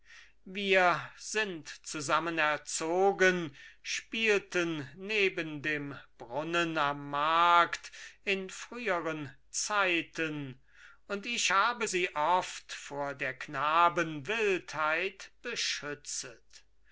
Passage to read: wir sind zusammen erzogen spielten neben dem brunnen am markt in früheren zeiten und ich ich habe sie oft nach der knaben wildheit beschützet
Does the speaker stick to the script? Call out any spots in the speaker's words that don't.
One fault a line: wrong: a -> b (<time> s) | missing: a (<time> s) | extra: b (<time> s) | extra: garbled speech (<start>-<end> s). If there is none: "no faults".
missing: ich (11.5 s)
wrong: nach -> vor (12.7 s)